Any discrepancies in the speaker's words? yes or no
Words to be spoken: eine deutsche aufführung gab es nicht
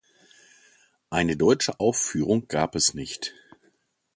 no